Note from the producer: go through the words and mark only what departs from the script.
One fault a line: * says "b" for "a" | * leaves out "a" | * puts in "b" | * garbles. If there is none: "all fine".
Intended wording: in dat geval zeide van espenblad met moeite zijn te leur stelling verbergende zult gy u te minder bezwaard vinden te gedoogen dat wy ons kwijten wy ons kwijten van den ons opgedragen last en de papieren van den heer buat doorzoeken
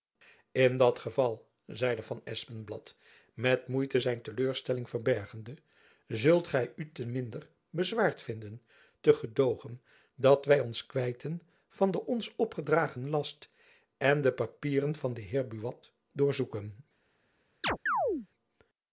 * leaves out "wy ons kwijten"